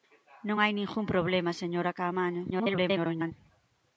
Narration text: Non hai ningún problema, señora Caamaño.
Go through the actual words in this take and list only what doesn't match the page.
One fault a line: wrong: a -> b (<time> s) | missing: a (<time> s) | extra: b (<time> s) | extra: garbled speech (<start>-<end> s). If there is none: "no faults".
extra: garbled speech (2.5-3.3 s)